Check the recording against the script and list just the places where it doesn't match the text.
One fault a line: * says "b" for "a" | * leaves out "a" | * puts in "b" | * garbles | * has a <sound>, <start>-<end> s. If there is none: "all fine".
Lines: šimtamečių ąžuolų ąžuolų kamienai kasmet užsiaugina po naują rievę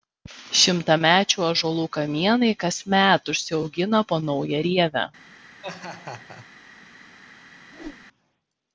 * leaves out "ąžuolų"
* has a laugh, 5.6-6.5 s
* has a whoosh, 7.7-8.1 s